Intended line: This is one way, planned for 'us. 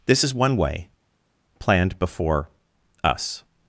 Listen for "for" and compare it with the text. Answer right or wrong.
wrong